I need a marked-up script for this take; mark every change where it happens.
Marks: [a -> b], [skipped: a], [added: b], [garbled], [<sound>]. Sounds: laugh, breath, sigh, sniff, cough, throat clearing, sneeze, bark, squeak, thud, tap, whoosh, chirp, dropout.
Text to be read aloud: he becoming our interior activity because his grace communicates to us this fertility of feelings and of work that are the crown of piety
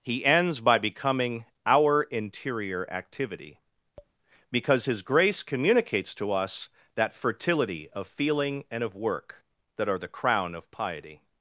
he [added: ends by] becoming our interior activity [tap] because his grace communicates to us [this -> that] fertility of [feelings -> feeling] and of work that are the crown of piety